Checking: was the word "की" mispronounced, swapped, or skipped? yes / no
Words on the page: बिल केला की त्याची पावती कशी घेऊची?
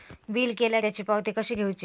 yes